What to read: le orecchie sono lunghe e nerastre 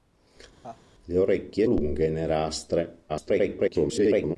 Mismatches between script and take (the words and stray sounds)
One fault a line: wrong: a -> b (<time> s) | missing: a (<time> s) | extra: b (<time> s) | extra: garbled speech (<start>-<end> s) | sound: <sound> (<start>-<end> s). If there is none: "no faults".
sound: laugh (0.6-0.8 s)
missing: sono (1.7 s)
extra: garbled speech (3.1-4.4 s)